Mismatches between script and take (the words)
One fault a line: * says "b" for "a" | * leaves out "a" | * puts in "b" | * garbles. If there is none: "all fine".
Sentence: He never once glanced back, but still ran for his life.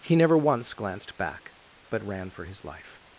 * leaves out "still"